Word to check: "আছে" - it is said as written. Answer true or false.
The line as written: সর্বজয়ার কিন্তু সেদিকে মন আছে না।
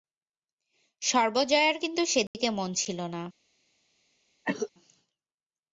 false